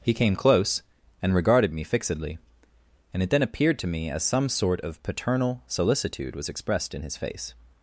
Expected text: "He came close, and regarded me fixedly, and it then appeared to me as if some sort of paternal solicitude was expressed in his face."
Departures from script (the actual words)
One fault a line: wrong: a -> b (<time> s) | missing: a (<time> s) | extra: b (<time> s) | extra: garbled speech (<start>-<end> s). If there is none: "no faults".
missing: if (4.2 s)